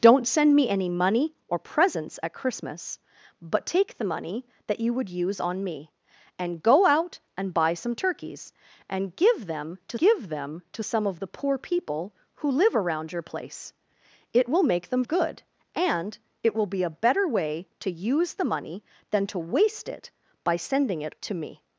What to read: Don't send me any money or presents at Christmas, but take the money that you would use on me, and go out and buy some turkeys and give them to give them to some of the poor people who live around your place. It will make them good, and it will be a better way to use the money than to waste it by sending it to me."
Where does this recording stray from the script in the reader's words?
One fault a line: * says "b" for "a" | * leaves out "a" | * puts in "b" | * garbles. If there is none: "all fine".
all fine